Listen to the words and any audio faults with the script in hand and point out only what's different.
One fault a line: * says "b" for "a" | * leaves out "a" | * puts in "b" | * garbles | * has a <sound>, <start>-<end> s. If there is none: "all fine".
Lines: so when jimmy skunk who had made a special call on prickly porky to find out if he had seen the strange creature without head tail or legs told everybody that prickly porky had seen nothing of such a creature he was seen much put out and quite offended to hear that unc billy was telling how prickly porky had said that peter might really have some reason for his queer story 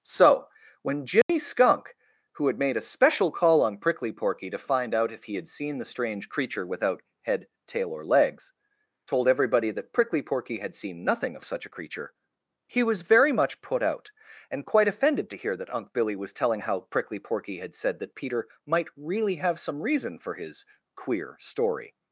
* has a dropout, 1.2-1.3 s
* says "very" for "seen"